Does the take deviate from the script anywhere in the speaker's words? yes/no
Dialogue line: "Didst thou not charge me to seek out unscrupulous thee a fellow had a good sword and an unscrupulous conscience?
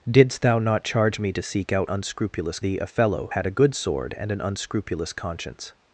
no